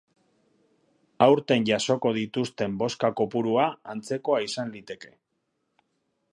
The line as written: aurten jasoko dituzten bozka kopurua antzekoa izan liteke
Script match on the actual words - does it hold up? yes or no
yes